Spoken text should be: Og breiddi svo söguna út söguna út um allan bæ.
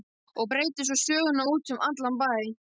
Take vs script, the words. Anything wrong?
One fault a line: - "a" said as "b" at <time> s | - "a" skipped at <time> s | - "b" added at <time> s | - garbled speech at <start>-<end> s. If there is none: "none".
- "söguna út" skipped at 1.7 s